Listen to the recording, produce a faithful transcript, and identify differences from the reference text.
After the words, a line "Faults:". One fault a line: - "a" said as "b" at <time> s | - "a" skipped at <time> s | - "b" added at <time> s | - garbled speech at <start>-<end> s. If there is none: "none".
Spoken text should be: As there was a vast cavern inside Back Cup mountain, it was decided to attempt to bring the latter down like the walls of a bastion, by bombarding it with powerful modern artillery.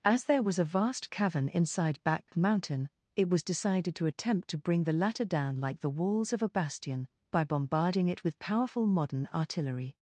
As there was a vast cavern inside Back Mountain, it was decided to attempt to bring the latter down like the walls of a bastion, by bombarding it with powerful modern artillery.
Faults:
- "Cup" skipped at 2.3 s